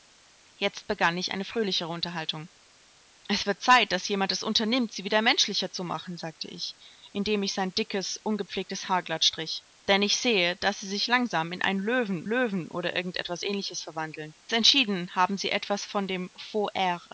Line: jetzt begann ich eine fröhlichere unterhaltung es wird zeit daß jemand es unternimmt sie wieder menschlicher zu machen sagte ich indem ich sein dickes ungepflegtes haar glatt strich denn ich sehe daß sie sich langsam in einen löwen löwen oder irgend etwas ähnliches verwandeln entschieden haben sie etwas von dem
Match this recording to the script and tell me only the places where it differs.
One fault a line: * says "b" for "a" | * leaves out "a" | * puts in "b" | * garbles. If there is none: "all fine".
all fine